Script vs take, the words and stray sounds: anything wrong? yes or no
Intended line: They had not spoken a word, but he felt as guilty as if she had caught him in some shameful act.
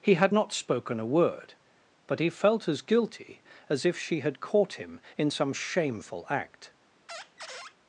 yes